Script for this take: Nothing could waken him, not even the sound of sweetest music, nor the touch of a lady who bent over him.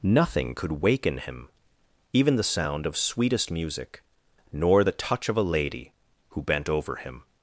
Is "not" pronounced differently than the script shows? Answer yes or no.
yes